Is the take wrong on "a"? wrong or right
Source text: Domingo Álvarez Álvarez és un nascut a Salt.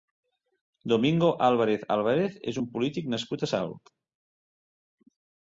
right